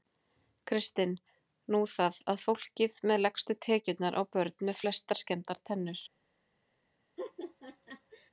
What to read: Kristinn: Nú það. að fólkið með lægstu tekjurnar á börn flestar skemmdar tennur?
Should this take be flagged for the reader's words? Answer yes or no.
yes